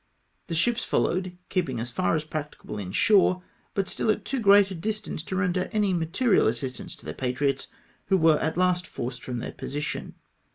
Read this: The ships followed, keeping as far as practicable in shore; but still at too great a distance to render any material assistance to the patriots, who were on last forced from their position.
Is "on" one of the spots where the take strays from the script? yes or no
yes